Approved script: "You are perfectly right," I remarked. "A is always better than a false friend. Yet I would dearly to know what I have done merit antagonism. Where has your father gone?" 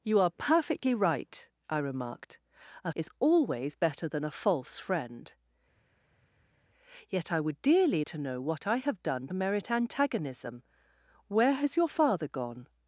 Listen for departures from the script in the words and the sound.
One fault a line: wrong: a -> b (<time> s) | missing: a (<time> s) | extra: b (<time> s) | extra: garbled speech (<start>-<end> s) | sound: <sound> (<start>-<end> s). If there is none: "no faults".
no faults